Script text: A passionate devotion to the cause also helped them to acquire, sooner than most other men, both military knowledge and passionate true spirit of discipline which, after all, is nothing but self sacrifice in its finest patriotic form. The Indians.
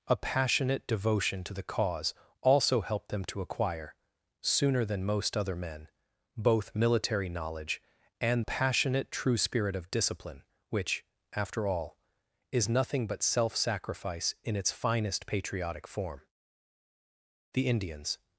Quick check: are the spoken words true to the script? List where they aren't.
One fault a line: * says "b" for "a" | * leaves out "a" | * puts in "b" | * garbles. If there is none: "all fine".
all fine